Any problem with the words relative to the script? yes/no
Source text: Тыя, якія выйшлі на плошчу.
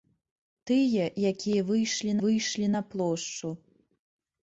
yes